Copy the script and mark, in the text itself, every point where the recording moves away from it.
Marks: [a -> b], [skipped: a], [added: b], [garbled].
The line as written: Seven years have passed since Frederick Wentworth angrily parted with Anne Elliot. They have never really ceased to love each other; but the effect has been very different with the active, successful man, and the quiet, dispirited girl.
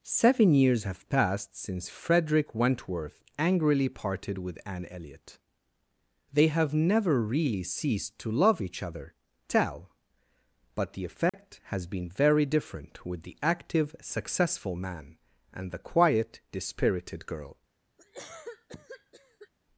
Seven years have passed since Frederick Wentworth angrily parted with Anne Elliot. They have never really ceased to love each other; [added: tell] but the effect has been very different with the active, successful man, and the quiet, dispirited girl.